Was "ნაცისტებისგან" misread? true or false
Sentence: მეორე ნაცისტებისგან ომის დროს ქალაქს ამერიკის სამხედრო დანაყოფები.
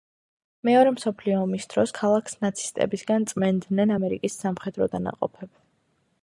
true